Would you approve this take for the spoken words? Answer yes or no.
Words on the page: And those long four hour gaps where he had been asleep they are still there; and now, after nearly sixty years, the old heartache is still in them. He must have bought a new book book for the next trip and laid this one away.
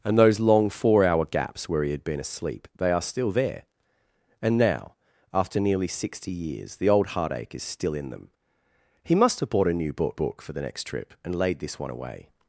yes